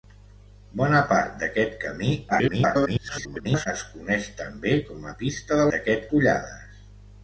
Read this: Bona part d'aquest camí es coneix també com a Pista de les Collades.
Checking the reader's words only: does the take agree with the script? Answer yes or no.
no